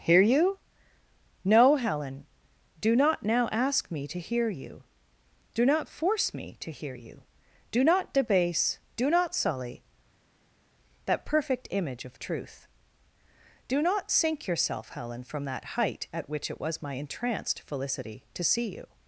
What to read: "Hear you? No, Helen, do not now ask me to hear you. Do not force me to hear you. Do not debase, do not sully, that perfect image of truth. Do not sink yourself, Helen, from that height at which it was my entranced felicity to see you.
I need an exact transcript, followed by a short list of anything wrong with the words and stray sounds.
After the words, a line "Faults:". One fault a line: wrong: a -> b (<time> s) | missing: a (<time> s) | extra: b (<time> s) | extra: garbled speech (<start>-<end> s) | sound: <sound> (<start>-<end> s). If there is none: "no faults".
"Hear you? No, Helen, do not now ask me to hear you. Do not force me to hear you. Do not debase, do not sully, that perfect image of truth. Do not sink yourself, Helen, from that height at which it was my entranced felicity to see you.
Faults:
no faults